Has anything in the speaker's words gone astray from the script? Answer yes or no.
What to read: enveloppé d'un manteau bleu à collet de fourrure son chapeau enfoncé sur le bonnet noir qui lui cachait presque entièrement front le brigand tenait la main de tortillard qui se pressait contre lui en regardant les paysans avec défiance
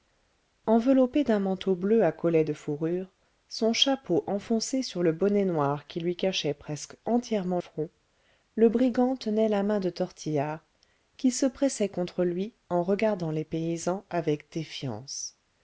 no